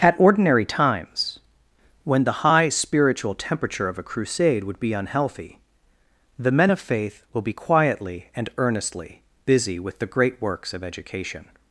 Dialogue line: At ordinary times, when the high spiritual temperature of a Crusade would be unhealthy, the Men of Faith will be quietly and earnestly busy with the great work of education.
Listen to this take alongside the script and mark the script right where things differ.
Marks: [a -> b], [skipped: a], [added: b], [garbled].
At ordinary times, when the high spiritual temperature of a Crusade would be unhealthy, the Men of Faith will be quietly and earnestly busy with the great [work -> works] of education.